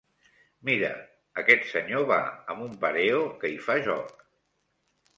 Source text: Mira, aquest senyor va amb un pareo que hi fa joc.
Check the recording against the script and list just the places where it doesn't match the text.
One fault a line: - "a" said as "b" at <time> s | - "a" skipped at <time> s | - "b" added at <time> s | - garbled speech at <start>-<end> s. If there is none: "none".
none